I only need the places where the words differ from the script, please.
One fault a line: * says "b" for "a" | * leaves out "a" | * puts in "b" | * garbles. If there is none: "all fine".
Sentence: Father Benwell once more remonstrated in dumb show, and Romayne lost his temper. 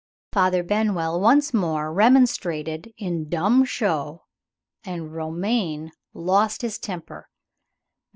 all fine